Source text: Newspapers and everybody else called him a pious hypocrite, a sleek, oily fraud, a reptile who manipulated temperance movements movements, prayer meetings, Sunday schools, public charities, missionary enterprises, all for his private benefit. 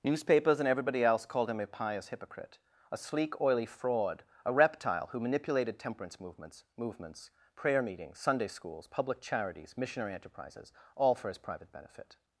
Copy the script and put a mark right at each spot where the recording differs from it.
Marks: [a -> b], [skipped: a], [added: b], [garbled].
Newspapers and everybody else called him a pious hypocrite, a sleek, oily fraud, a reptile who manipulated temperance movements movements, prayer meetings, Sunday schools, public charities, missionary enterprises, all for his private benefit.